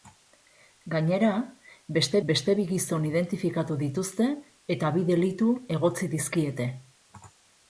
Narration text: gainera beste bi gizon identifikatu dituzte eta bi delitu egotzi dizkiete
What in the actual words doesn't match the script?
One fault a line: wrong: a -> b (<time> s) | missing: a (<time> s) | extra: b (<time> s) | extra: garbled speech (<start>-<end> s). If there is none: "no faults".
extra: beste (2.3 s)